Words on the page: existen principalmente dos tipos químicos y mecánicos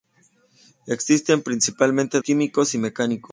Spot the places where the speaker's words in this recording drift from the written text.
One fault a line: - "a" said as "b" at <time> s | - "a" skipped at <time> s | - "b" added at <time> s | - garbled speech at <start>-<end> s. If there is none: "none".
- "dos tipos" skipped at 2.2 s